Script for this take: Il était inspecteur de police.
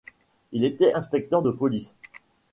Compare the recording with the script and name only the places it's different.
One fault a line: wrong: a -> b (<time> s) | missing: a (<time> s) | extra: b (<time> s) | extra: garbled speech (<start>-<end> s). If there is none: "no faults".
no faults